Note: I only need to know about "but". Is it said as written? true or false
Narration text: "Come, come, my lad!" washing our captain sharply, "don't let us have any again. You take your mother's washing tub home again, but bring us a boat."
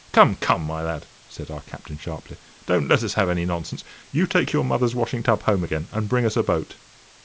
false